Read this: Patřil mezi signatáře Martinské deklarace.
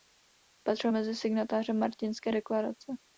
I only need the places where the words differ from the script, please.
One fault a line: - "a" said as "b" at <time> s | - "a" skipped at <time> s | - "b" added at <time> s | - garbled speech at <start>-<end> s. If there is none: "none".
none